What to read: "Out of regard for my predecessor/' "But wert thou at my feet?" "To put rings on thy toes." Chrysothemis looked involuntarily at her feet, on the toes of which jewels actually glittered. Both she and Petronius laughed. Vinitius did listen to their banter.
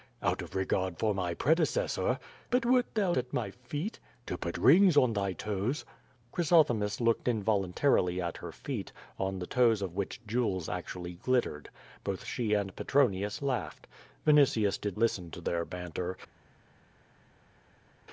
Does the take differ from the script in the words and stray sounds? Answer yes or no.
no